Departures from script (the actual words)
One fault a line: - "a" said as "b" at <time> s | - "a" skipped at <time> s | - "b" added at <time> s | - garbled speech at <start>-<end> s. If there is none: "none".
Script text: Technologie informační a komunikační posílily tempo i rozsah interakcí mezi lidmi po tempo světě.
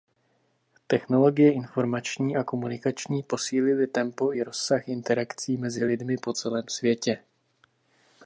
- "tempo" said as "celém" at 6.3 s